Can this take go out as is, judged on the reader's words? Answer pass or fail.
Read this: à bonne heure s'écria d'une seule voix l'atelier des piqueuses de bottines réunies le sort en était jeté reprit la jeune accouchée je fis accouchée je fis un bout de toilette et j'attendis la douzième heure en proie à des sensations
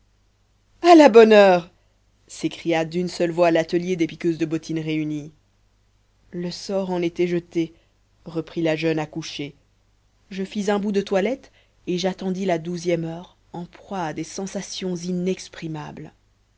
fail